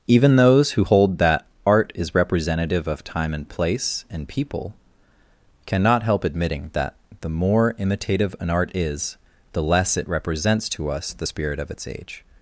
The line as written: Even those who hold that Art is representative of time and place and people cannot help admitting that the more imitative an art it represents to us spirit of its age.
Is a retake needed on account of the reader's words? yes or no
yes